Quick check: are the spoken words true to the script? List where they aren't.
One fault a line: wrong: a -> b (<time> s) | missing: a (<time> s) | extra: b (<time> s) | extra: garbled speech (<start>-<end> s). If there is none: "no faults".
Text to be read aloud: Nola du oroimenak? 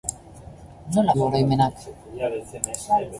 no faults